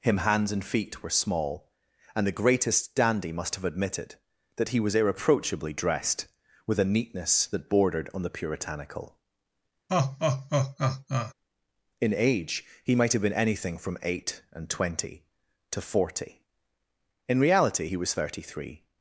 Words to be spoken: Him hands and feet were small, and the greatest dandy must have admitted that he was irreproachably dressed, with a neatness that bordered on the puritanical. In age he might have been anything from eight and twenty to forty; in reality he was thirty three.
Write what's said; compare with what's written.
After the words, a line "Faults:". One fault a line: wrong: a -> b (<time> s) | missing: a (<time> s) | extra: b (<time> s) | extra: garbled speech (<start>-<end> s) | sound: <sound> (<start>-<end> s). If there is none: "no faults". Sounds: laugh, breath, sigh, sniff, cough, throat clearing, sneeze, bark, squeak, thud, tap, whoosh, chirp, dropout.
Him hands and feet were small, and the greatest dandy must have admitted that he was irreproachably dressed, with a neatness that bordered on the puritanical. In age he might have been anything from eight and twenty to forty; in reality he was thirty three.
Faults:
sound: laugh (9.9-11.3 s)